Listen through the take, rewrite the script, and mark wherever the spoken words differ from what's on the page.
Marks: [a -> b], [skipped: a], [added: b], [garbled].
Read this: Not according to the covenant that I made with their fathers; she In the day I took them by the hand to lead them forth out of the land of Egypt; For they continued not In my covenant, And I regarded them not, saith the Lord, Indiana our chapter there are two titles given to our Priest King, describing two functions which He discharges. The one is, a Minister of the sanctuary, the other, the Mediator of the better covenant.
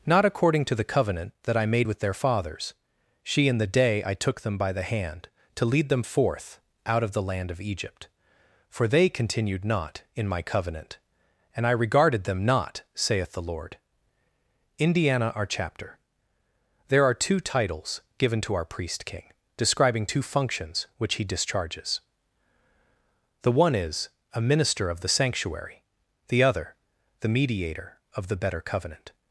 Not according to the covenant that I made with their fathers; she In the day I took them by the hand to lead them forth out of the land of Egypt; For they continued not In my covenant, And I regarded them not, saith the Lord, Indiana our chapter there are two titles given to our Priest King, describing two functions which He discharges. The one is, a Minister of the sanctuary, the other, the Mediator of the better covenant.